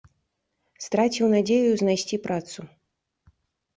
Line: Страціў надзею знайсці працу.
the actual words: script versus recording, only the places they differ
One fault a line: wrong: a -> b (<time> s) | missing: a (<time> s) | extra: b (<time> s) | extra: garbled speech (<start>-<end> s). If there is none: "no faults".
no faults